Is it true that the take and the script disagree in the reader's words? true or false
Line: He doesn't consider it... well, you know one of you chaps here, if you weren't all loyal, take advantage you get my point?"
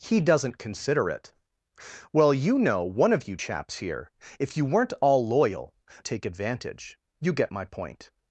false